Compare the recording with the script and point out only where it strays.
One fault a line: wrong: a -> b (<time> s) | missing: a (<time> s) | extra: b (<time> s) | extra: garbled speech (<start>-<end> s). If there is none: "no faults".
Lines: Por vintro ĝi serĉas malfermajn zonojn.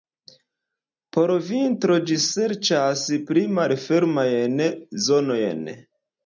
extra: pli (3.3 s)